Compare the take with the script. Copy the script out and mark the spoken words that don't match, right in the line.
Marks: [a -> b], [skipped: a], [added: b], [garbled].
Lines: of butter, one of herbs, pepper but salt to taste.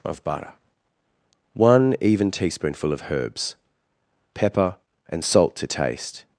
of butter, one [added: even teaspoonful] of herbs, pepper [but -> and] salt to taste.